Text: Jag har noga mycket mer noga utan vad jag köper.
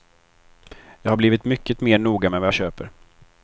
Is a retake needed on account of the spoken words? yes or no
yes